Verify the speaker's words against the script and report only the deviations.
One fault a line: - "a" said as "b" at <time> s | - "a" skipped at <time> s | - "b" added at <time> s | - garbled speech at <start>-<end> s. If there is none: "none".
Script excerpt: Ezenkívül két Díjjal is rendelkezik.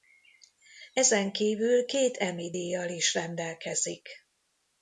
- "Emmy" added at 2.2 s